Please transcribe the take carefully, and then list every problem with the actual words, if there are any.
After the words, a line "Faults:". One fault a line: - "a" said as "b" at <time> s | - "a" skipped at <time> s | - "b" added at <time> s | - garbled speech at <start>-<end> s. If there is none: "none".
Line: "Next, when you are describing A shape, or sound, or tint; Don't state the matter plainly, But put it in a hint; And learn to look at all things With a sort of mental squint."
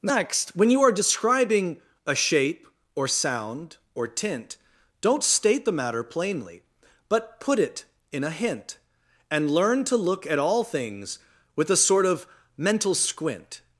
"Next, when you are describing A shape, or sound, or tint; Don't state the matter plainly, But put it in a hint; And learn to look at all things With a sort of mental squint."
Faults:
none